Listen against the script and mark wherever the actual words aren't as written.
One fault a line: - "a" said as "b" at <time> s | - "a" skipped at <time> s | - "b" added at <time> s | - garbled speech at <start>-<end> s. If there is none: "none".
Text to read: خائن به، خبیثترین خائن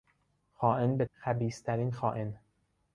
none